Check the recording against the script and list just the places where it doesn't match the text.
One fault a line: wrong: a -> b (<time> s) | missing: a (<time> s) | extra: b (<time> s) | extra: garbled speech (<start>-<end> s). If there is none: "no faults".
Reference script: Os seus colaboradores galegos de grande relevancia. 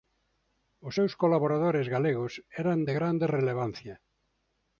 extra: eran (2.6 s)